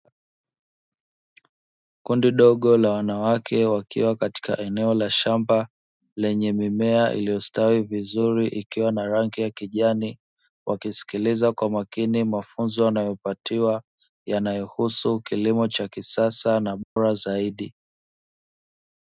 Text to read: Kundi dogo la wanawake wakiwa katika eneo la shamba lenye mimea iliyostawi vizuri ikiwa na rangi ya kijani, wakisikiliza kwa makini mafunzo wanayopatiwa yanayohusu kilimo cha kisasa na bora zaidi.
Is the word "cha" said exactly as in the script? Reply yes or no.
yes